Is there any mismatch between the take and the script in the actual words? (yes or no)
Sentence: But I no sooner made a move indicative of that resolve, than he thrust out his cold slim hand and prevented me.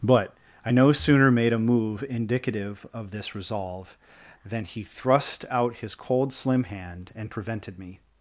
yes